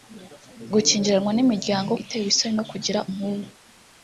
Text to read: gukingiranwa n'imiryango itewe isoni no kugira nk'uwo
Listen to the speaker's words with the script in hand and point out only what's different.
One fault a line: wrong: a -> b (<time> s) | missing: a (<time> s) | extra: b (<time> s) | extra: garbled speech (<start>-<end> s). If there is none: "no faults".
no faults